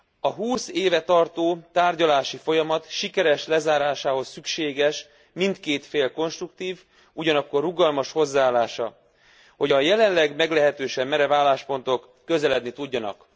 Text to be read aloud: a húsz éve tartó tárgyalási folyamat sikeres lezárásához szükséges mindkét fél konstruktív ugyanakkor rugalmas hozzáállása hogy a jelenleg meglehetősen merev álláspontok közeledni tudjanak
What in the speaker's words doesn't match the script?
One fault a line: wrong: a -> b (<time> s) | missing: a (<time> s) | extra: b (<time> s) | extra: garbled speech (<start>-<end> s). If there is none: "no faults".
no faults